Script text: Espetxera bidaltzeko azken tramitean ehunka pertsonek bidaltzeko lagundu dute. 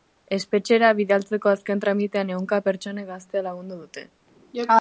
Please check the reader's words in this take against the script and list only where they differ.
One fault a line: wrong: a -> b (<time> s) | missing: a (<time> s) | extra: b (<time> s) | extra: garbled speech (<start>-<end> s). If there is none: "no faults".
wrong: bidaltzeko -> gaztea (3.1 s)